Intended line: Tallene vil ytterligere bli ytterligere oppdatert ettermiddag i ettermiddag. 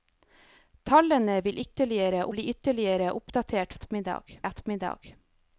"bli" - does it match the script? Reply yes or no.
yes